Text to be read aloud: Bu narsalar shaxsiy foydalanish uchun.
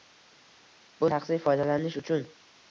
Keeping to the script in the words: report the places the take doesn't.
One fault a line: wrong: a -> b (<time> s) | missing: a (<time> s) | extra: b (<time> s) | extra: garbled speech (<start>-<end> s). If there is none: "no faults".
missing: narsalar (1.1 s)